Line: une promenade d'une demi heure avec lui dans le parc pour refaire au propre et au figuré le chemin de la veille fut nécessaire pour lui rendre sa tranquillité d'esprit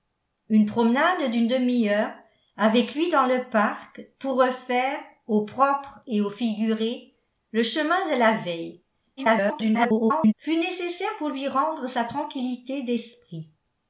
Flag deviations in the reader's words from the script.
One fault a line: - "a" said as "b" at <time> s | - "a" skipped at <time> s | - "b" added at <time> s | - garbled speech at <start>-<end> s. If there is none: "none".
- garbled speech at 9.2-10.3 s